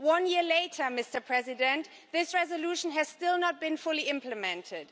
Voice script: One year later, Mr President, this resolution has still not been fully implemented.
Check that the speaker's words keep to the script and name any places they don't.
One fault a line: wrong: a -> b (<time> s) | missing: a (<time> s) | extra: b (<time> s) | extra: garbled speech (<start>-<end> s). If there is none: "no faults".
no faults